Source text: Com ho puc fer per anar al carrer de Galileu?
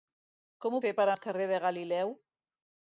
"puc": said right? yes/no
no